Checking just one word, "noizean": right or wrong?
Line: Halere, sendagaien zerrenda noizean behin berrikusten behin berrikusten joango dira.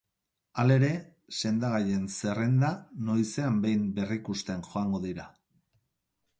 right